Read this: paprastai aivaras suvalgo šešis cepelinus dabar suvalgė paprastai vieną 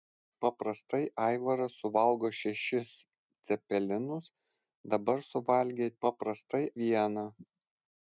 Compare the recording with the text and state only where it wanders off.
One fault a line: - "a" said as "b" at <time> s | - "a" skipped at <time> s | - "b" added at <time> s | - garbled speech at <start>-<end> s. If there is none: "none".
none